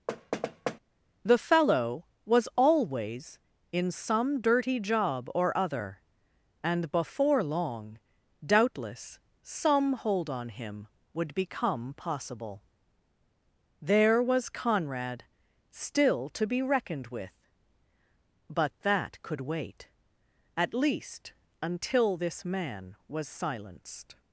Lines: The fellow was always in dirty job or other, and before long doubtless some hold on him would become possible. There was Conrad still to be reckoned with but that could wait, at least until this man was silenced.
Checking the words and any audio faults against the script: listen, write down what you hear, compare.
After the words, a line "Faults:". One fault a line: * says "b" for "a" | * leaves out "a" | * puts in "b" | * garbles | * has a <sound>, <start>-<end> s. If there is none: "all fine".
The fellow was always in some dirty job or other, and before long doubtless some hold on him would become possible. There was Conrad still to be reckoned with but that could wait, at least until this man was silenced.
Faults:
* has a thud, 0.1-0.8 s
* puts in "some"